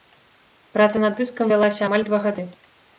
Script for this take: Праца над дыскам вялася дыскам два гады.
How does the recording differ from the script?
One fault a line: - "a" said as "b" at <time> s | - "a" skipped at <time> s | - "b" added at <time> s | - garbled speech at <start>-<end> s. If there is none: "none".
- "дыскам" said as "амаль" at 1.9 s